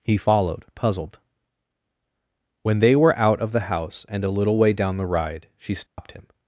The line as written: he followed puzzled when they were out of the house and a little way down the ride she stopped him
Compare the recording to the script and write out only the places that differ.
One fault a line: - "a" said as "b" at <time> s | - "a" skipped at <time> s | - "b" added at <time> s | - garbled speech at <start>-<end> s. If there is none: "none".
none